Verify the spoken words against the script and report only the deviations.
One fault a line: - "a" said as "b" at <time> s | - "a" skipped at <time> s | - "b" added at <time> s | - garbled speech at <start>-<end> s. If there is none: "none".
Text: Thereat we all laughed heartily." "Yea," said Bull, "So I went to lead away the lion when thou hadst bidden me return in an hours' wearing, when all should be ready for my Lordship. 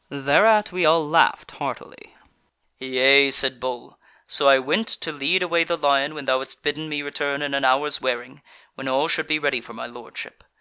none